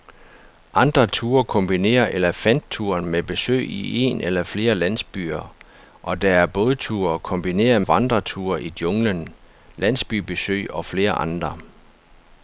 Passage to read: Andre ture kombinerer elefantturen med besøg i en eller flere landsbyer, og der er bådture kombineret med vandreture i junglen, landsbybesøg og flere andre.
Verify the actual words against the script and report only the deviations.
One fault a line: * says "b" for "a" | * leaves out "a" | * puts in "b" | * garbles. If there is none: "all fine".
* leaves out "med"